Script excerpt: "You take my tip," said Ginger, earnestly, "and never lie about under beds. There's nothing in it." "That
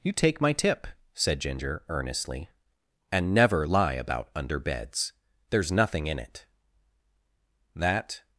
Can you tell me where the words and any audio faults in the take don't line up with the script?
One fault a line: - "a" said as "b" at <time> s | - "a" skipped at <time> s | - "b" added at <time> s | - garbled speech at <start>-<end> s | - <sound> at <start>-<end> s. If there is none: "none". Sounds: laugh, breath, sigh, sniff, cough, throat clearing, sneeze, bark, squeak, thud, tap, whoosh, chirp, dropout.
none